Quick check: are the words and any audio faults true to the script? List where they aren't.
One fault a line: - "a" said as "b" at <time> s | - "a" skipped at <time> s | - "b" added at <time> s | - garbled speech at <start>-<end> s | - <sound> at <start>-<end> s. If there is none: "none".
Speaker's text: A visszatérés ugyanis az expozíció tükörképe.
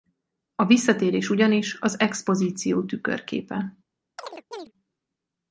- chirp at 4.2-4.7 s